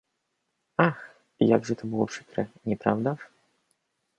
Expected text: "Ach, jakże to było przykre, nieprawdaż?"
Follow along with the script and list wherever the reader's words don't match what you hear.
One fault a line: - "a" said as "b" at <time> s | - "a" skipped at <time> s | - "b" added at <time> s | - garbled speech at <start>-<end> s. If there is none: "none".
none